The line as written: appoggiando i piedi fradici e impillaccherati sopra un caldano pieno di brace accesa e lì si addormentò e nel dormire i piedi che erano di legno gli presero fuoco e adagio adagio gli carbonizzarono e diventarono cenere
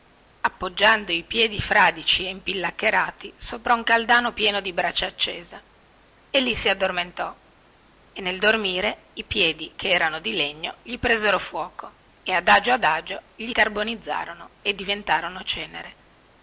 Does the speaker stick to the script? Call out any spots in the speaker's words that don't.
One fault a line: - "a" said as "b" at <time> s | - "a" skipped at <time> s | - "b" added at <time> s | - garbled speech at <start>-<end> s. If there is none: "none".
none